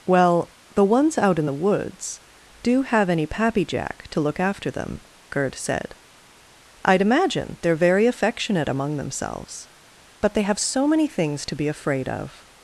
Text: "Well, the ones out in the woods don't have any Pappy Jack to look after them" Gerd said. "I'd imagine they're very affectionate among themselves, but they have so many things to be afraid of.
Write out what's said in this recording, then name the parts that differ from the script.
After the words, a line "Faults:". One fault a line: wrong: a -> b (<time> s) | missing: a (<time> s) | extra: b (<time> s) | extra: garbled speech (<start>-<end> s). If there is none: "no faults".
"Well, the ones out in the woods do have any Pappy Jack to look after them" Gerd said. "I'd imagine they're very affectionate among themselves, but they have so many things to be afraid of.
Faults:
wrong: don't -> do (2.6 s)